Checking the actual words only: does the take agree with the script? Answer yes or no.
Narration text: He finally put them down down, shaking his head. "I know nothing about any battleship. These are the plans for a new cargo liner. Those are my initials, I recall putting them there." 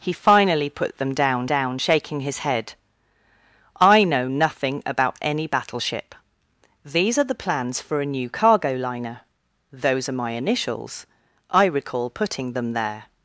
yes